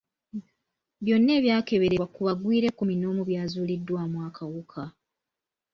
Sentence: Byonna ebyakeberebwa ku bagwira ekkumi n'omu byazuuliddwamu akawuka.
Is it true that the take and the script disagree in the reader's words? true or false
false